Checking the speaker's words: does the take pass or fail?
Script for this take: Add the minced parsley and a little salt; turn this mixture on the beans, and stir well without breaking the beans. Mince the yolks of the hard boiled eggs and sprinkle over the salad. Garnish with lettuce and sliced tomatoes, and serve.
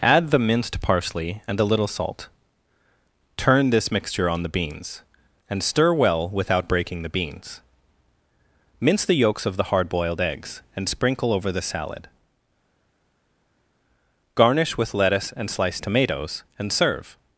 pass